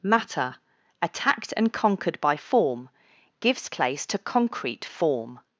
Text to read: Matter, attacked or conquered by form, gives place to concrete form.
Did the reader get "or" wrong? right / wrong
wrong